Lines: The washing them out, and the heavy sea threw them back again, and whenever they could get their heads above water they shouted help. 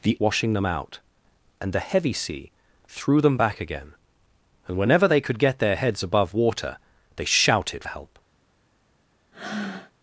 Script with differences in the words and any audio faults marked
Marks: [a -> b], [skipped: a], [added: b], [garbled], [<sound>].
The washing them out, and the heavy sea threw them back again, and whenever they could get their heads above water they shouted help. [breath]